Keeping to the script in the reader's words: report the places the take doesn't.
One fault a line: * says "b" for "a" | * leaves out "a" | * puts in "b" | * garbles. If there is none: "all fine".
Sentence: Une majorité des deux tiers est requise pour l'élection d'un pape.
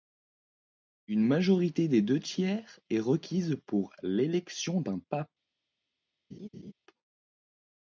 all fine